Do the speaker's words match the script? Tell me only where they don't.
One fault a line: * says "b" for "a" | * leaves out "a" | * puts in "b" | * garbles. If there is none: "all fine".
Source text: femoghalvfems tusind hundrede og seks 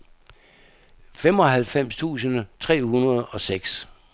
* puts in "tre"